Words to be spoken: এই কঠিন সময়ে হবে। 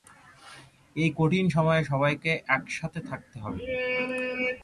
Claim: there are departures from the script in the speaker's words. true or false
true